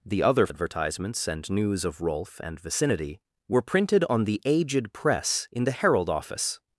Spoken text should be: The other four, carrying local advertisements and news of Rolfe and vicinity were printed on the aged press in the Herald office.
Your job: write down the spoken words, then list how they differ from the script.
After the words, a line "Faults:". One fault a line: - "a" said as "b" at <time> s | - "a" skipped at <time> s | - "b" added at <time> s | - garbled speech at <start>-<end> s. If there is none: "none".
The other advertisements and news of Rolfe and vicinity were printed on the aged press in the Herald office.
Faults:
- "four carrying local" skipped at 0.5 s